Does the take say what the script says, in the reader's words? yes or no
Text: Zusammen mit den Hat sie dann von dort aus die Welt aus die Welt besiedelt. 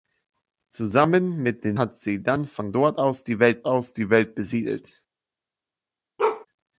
yes